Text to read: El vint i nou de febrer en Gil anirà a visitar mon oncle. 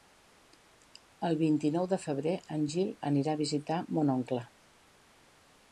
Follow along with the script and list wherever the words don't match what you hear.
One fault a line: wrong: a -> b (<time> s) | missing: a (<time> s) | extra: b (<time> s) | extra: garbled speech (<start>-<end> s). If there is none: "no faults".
no faults